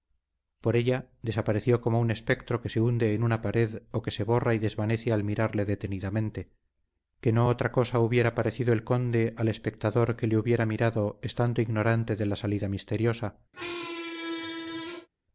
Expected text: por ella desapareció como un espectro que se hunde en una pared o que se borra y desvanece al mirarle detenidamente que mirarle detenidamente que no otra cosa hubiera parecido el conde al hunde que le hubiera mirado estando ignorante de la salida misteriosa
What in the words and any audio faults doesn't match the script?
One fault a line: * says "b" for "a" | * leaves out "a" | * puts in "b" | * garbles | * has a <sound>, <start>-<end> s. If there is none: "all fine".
* leaves out "mirarle detenidamente que"
* says "espectador" for "hunde"
* has a squeak, 13.5-15.1 s